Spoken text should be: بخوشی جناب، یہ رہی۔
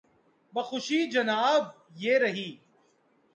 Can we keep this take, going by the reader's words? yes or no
yes